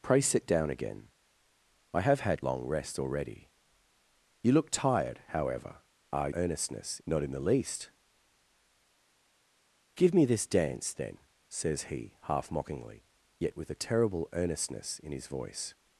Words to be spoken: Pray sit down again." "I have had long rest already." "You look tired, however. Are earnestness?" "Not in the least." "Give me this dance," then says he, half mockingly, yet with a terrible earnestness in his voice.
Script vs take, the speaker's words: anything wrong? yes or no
no